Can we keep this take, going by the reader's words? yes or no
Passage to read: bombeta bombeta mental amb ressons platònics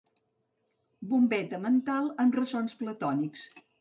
no